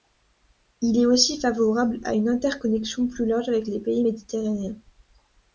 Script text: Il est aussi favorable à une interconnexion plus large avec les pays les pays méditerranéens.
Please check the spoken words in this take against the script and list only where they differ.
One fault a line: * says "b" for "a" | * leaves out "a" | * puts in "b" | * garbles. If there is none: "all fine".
* leaves out "les pays"